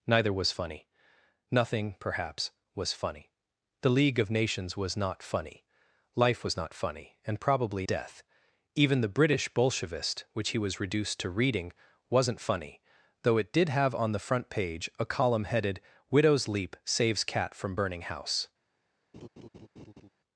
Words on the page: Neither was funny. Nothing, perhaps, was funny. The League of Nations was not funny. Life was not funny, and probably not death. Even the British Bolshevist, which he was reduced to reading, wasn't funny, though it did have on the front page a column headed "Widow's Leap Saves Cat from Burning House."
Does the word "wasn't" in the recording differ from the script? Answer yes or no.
no